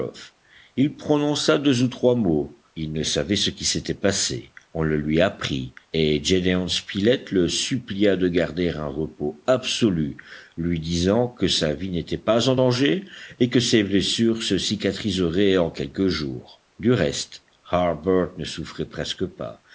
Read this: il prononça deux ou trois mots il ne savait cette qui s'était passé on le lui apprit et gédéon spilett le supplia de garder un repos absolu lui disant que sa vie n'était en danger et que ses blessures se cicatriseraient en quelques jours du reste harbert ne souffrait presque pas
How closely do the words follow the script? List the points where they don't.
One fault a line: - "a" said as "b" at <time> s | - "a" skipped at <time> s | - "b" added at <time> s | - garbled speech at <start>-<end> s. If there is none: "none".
- "cette" said as "ce" at 3.4 s
- "pas" added at 12.2 s